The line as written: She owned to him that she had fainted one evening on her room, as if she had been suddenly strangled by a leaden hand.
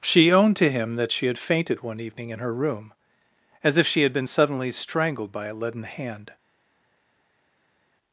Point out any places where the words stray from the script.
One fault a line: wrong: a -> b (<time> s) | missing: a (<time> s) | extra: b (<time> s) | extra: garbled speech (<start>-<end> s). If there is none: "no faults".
wrong: on -> in (2.3 s)